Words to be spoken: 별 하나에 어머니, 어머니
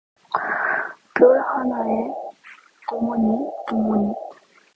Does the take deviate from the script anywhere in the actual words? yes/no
no